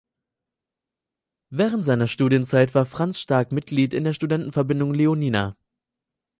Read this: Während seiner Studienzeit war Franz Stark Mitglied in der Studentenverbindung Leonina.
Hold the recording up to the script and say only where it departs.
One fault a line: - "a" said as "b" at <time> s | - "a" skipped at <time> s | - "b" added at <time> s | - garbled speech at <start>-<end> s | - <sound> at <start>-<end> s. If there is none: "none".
none